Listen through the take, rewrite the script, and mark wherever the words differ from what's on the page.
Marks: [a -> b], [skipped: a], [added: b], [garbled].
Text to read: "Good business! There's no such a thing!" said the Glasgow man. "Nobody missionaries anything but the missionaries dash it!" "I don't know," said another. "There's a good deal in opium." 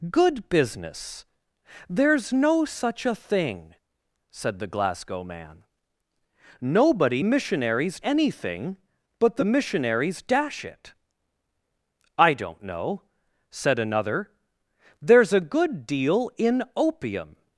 "Good business! There's no such a thing!" said the Glasgow man. "Nobody missionaries anything but the missionaries dash it!" "I don't know," said another. "There's a good deal in opium."